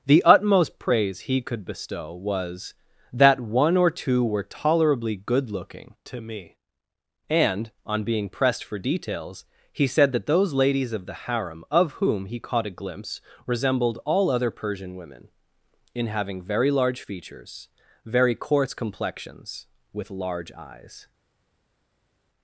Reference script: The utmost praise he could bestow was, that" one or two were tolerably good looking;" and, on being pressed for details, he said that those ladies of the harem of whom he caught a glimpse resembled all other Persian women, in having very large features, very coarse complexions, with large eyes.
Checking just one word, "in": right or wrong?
right